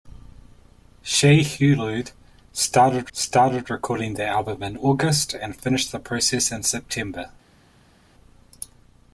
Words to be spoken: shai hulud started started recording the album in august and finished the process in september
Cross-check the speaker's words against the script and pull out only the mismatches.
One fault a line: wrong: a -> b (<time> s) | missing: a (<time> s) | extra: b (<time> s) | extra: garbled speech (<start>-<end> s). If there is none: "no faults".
no faults